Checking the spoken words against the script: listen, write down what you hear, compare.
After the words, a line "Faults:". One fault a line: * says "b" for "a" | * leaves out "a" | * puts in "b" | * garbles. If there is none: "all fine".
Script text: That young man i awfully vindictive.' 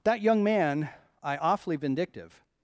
That young man i awfully vindictive.'
Faults:
all fine